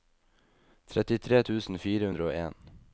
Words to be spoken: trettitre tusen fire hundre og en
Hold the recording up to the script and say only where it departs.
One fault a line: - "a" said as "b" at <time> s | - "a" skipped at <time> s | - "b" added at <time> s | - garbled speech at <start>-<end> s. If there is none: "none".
none